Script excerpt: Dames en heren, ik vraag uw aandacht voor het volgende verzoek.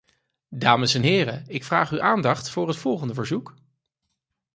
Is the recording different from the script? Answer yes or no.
no